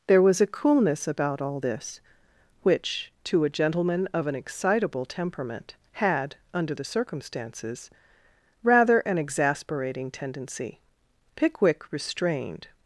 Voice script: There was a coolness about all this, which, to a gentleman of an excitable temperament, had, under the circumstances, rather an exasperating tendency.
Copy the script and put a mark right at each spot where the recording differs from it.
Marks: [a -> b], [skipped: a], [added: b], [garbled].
There was a coolness about all this, which, to a gentleman of an excitable temperament, had, under the circumstances, rather an exasperating tendency. [added: Pickwick restrained]